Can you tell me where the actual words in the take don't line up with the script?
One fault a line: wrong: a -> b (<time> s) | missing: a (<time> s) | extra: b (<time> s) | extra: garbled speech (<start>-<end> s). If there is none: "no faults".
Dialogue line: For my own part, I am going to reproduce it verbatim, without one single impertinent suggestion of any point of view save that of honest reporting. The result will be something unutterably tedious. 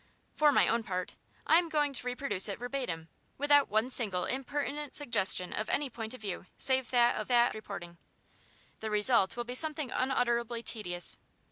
wrong: honest -> that (7.3 s)